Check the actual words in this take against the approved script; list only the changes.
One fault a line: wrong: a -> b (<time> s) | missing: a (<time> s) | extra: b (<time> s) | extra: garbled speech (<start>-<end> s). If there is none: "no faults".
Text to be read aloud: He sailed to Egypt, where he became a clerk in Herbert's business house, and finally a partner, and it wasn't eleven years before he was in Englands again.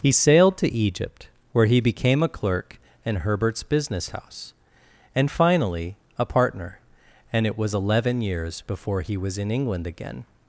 wrong: wasn't -> was (7.6 s)
wrong: Englands -> England (9.5 s)